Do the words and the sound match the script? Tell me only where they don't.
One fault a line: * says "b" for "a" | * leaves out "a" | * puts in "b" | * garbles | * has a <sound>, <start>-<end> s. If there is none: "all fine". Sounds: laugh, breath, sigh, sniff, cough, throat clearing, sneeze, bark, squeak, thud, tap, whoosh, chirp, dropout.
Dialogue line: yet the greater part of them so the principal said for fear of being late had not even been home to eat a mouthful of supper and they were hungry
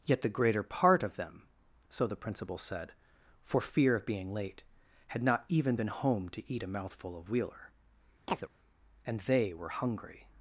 * says "wheeler" for "supper"
* has a chirp, 8.3-8.5 s